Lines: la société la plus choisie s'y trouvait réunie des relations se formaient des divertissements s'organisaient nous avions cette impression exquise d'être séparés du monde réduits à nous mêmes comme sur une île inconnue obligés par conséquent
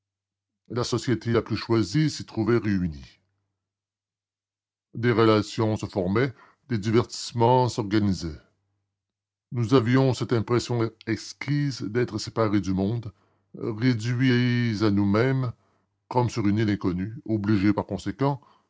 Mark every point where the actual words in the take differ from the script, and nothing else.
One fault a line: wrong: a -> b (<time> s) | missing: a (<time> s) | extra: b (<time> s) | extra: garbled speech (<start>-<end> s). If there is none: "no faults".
no faults